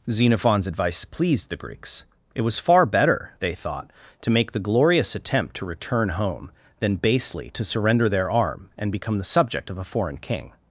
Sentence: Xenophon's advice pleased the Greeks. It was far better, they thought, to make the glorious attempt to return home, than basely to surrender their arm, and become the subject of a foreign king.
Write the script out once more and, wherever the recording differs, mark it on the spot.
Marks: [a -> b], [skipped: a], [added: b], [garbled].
Xenophon's advice pleased the Greeks. It was far better, they thought, to make the glorious attempt to return home, than basely to surrender their arm, and become the subject of a foreign king.